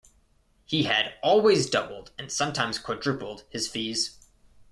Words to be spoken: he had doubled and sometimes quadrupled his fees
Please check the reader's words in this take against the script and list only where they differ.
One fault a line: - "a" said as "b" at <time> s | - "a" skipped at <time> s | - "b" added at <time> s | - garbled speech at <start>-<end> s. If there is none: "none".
- "always" added at 1.2 s